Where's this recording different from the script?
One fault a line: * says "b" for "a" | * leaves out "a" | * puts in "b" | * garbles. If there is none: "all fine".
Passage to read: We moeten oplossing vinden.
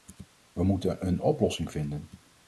* puts in "een"